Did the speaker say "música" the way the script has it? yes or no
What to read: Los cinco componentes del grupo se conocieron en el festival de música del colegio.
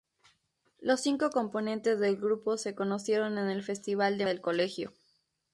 no